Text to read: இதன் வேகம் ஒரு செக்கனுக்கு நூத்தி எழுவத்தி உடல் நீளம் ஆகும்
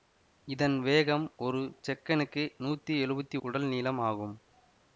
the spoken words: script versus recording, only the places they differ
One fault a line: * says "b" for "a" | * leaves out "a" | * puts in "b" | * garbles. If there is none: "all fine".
all fine